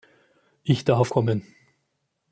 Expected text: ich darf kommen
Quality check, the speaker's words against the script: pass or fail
pass